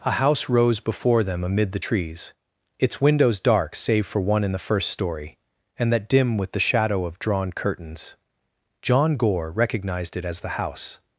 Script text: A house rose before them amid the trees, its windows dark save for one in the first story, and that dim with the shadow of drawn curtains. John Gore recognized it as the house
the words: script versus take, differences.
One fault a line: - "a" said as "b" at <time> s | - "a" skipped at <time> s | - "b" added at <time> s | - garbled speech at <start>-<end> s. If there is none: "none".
none